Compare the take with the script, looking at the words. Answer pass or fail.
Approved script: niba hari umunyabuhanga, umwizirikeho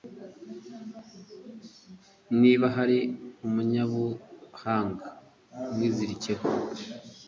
pass